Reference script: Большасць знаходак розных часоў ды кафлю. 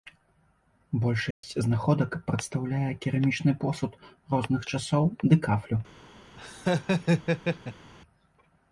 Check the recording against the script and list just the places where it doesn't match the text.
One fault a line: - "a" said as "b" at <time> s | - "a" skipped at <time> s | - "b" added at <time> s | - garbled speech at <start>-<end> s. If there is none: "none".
- "прадстаўляе керамічны посуд" added at 2.3 s